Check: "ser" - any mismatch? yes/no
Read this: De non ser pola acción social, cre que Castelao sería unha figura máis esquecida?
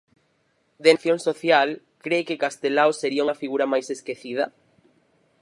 yes